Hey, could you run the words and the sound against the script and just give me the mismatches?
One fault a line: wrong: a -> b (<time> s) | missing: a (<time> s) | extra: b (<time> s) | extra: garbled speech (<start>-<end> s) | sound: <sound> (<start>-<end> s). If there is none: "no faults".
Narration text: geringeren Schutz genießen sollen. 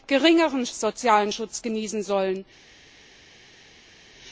extra: sozialen (0.6 s)